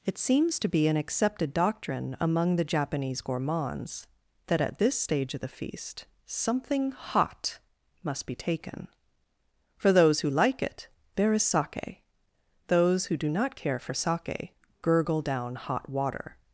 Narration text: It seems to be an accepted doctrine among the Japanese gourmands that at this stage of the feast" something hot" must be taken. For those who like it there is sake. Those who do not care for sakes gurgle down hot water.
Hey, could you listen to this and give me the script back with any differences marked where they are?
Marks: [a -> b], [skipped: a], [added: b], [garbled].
It seems to be an accepted doctrine among the Japanese gourmands that at this stage of the feast" something hot" must be taken. For those who like it there is sake. Those who do not care for [sakes -> sake] gurgle down hot water.